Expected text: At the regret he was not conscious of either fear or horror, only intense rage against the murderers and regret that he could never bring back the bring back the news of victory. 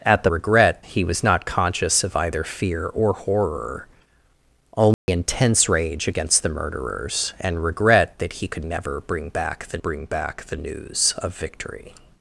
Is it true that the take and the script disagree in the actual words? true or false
false